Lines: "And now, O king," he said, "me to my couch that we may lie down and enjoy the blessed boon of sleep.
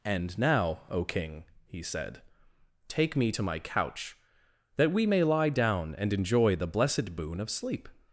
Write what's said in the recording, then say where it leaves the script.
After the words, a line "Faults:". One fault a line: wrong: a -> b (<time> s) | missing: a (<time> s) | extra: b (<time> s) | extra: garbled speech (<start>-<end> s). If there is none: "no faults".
"And now, O king," he said, "take me to my couch that we may lie down and enjoy the blessed boon of sleep.
Faults:
extra: take (2.9 s)